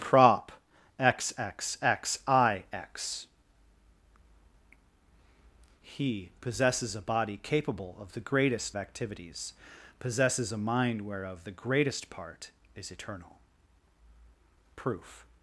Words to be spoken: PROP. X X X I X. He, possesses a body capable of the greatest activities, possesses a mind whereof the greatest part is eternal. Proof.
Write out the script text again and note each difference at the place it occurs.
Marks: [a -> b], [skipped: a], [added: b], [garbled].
PROP. X X X I X. He, possesses a body capable of the greatest activities, possesses a mind whereof the greatest part is eternal. Proof.